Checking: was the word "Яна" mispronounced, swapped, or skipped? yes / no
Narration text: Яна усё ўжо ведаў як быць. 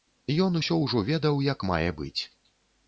yes